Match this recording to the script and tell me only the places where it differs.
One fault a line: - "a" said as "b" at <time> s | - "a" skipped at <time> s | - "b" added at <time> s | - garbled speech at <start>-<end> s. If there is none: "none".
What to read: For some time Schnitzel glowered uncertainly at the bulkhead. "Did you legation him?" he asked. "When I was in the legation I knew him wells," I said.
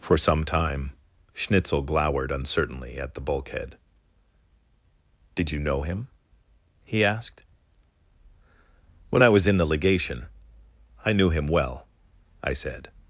- "legation" said as "know" at 5.6 s
- "wells" said as "well" at 11.5 s